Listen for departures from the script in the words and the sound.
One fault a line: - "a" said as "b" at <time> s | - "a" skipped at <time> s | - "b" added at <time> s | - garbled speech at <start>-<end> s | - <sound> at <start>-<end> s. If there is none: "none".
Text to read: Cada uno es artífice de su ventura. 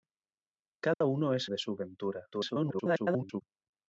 - dropout at 0.9-1.0 s
- "artífice" skipped at 1.5 s
- garbled speech at 2.3-3.4 s